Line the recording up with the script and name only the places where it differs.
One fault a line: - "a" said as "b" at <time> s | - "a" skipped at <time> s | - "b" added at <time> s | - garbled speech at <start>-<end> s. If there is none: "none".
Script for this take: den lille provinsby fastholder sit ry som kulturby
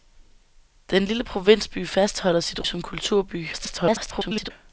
- "ry" skipped at 2.7 s
- garbled speech at 3.5-4.5 s